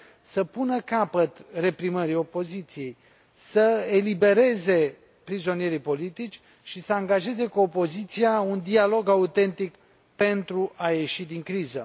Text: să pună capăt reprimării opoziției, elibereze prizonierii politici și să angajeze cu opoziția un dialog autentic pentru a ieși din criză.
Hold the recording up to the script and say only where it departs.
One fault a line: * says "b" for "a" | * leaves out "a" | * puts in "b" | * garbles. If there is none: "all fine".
* puts in "să"